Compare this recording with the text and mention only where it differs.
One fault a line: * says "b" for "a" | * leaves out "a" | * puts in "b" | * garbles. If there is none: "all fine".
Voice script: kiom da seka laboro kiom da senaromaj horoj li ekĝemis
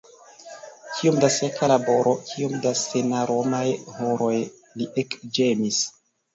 all fine